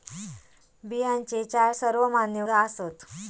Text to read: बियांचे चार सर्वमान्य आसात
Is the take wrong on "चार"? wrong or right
right